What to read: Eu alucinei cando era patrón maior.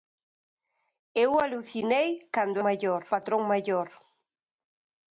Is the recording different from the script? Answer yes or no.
yes